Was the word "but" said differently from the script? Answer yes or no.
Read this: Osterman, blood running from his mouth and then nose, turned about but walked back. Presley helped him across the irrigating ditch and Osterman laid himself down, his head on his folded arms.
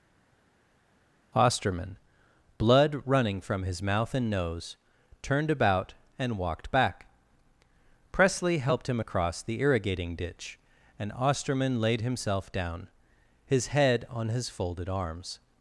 yes